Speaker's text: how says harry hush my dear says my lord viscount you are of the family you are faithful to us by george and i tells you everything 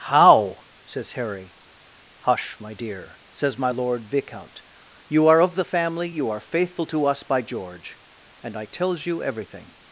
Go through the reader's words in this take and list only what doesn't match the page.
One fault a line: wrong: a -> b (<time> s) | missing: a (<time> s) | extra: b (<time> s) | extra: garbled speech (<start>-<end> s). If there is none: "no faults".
no faults